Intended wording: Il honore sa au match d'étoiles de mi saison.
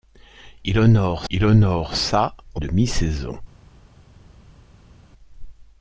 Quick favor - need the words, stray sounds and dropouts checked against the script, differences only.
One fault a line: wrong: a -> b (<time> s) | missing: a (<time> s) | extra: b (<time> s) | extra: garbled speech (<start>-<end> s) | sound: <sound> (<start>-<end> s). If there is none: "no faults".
extra: il honore (1.3 s)
missing: match d'étoiles (2.6 s)